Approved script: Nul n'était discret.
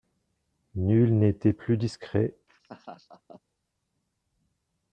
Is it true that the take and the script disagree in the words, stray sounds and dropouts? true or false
true